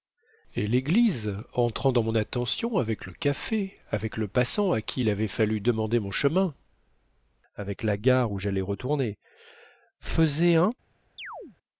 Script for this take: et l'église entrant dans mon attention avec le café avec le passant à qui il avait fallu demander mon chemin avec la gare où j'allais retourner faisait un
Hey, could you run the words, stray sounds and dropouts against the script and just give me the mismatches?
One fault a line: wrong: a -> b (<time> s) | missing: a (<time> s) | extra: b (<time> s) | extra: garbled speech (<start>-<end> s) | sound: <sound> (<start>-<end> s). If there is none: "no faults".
sound: chirp (11.2-11.6 s)